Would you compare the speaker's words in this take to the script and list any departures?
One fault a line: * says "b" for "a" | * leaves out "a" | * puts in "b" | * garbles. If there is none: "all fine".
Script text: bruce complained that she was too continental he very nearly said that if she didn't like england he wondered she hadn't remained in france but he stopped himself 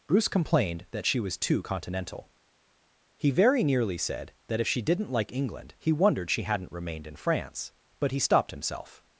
all fine